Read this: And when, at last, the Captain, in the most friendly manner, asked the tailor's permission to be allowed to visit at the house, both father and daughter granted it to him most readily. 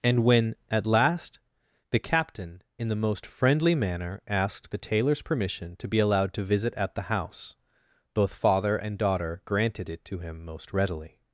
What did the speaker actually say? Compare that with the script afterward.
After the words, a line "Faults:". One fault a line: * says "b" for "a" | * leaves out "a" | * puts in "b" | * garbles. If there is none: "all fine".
And when, at last, the Captain, in the most friendly manner, asked the tailor's permission to be allowed to visit at the house, both father and daughter granted it to him most readily.
Faults:
all fine